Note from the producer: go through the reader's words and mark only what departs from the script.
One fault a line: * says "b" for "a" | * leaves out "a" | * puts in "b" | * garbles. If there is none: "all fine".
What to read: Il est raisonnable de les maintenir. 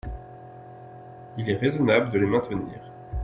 all fine